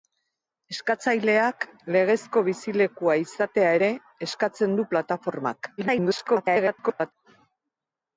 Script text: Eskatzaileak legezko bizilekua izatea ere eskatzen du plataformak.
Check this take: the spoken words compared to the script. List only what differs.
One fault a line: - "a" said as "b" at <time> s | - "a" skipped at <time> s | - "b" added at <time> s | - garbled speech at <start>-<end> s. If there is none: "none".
- garbled speech at 5.8-7.1 s